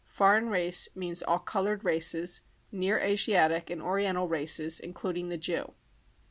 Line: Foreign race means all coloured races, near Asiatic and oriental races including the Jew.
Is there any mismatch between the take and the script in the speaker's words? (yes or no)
no